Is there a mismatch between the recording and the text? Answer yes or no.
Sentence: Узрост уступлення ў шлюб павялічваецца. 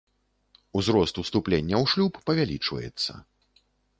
no